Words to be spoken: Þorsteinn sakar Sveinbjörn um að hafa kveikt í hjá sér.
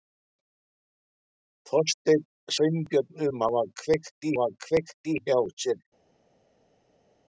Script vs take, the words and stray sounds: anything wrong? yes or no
yes